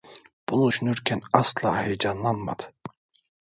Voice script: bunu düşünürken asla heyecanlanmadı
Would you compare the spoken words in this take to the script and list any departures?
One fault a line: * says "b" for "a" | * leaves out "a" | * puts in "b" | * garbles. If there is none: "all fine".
all fine